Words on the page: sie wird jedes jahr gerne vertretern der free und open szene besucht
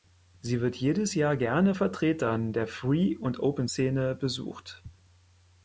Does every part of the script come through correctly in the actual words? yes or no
yes